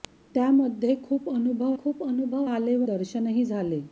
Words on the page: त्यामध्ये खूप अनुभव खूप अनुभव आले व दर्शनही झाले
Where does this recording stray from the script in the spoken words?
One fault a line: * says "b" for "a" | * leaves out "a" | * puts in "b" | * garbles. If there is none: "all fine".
all fine